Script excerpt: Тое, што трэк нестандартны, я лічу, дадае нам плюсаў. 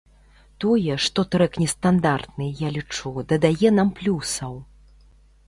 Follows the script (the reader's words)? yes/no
yes